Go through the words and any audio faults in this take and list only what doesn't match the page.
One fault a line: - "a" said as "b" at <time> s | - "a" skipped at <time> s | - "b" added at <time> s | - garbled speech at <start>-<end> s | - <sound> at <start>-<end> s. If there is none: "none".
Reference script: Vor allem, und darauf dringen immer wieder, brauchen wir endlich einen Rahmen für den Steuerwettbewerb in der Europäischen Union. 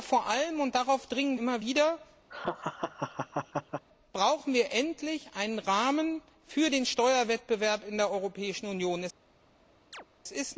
- laugh at 2.3-3.9 s
- chirp at 9.9-10.1 s